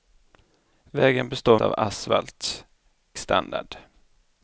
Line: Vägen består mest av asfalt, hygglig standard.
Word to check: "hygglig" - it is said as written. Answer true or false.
false